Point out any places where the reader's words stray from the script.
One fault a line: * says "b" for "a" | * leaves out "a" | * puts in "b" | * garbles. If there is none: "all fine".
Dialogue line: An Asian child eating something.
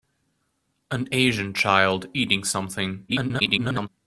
* garbles